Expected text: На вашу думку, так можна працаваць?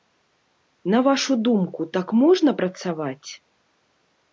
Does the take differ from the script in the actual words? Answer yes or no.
no